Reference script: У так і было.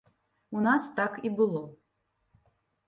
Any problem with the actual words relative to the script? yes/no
yes